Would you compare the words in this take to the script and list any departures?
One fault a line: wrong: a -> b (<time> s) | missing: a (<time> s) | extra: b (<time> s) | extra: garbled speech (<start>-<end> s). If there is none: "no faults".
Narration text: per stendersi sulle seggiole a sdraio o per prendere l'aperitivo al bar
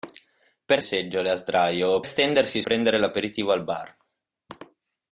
missing: stendersi sulle (0.8 s)
wrong: per -> stendersi (2.1 s)